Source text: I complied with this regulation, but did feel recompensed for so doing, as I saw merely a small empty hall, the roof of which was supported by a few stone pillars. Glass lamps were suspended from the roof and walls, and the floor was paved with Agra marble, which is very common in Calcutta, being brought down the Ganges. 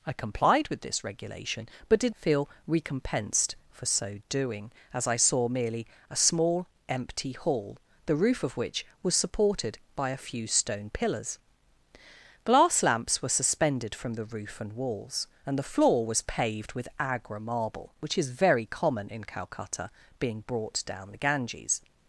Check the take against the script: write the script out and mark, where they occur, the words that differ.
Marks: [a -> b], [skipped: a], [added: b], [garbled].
I complied with this regulation, but did feel recompensed for so doing, as I saw merely a small empty hall, the roof of which was supported by a few stone pillars. Glass lamps were suspended from the roof and walls, and the floor was paved with Agra marble, which is very common in Calcutta, being brought down the Ganges.